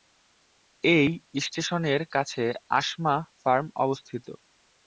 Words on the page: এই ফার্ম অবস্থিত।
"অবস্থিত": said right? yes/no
yes